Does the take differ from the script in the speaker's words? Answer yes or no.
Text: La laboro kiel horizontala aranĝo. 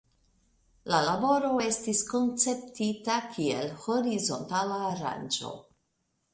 yes